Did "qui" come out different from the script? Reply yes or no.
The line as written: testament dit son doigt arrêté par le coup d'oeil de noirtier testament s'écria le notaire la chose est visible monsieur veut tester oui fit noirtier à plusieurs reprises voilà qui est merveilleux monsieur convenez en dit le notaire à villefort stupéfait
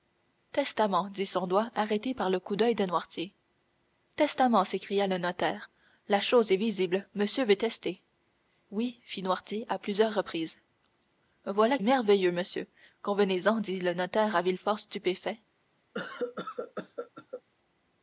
yes